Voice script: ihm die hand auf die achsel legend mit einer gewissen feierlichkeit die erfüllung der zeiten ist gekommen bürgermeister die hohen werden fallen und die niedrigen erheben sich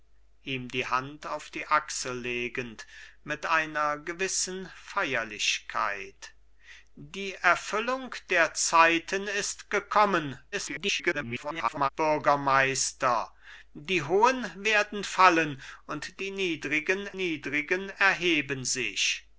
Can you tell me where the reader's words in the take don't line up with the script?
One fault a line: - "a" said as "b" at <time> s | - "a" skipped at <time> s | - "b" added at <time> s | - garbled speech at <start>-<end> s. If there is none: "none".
- garbled speech at 10.5-11.9 s
- "niedrigen" added at 17.1 s